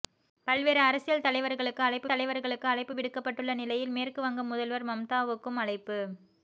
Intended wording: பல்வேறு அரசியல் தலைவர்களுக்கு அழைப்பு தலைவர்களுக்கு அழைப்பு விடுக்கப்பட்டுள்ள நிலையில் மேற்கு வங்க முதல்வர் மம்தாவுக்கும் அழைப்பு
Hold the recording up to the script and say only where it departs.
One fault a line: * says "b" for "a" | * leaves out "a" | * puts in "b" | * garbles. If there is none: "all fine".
all fine